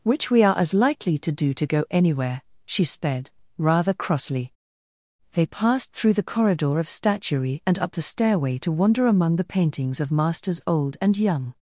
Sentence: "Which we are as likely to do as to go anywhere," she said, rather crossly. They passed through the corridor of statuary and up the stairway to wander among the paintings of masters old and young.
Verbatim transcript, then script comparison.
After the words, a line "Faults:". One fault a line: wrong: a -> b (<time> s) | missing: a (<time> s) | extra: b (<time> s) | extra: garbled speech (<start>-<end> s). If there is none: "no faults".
"Which we are as likely to do to go anywhere," she sped, rather crossly. They passed through the corridor of statuary and up the stairway to wander among the paintings of masters old and young.
Faults:
missing: as (1.5 s)
wrong: said -> sped (2.8 s)